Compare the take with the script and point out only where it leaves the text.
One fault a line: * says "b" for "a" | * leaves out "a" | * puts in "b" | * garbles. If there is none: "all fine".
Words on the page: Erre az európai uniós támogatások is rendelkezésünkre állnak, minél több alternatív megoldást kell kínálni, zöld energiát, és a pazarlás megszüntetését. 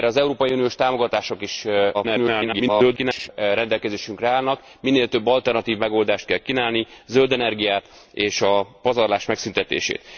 * garbles